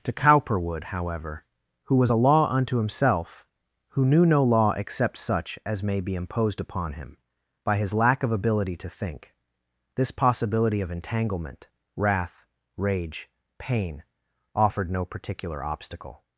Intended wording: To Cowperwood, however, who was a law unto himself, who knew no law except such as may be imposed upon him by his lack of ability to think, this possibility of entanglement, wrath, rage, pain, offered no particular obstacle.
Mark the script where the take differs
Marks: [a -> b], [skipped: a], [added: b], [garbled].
To Cowperwood, however, who was a law unto himself, who knew no law except such as may be imposed upon him by his lack of ability to think, this possibility of entanglement, wrath, rage, pain, offered no particular obstacle.